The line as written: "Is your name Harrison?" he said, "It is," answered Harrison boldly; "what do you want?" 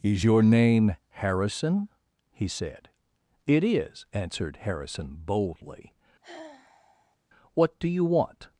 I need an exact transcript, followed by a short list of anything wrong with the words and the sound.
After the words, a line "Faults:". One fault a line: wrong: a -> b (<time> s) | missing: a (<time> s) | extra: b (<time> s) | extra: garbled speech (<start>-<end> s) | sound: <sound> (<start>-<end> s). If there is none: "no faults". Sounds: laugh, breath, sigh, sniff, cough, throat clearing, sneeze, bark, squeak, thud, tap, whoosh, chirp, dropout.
"Is your name Harrison?" he said, "It is," answered Harrison boldly; "what do you want?"
Faults:
sound: sigh (6.2-7.2 s)